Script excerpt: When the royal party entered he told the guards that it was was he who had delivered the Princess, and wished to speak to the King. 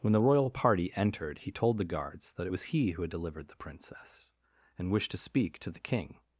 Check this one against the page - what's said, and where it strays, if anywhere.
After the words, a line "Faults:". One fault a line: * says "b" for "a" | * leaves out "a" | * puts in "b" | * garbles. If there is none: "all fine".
When the royal party entered he told the guards that it was he who had delivered the Princess, and wished to speak to the King.
Faults:
* leaves out "was"